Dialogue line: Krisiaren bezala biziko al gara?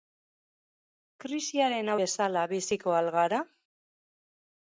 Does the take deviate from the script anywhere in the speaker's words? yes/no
no